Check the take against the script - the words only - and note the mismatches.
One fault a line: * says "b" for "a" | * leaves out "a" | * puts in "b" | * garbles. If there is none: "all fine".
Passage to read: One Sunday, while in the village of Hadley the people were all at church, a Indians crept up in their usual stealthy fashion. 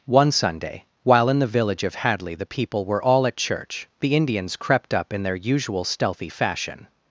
* says "the" for "a"